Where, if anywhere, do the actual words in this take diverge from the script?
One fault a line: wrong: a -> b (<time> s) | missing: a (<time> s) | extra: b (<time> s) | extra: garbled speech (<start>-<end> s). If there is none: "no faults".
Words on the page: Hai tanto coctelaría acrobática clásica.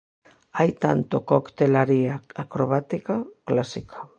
no faults